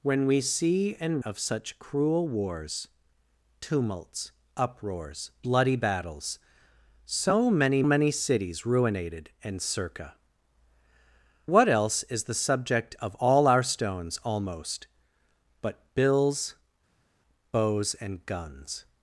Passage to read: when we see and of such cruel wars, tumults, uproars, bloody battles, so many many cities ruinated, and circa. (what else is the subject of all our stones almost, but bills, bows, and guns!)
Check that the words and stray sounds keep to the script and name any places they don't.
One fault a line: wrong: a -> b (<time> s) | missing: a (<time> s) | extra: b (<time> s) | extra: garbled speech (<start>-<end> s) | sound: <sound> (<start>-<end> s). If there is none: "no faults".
no faults